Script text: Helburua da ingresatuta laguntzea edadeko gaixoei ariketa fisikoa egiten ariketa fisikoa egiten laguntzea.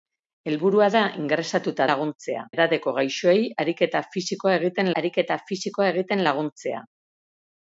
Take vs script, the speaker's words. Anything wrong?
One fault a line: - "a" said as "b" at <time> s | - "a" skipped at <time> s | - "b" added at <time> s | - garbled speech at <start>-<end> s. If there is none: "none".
none